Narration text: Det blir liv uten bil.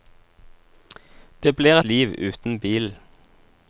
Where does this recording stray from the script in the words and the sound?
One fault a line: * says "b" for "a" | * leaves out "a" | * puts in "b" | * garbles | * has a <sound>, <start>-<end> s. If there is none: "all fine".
all fine